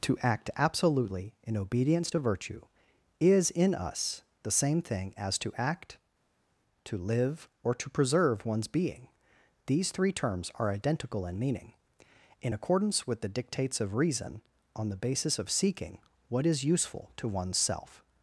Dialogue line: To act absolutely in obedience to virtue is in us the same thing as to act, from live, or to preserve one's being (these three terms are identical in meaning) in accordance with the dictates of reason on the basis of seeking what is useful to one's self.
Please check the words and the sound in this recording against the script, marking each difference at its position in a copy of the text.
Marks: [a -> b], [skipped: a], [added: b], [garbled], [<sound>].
To act absolutely in obedience to virtue is in us the same thing as to act, [from -> to] live, or to preserve one's being (these three terms are identical in meaning) in accordance with the dictates of reason on the basis of seeking what is useful to one's self.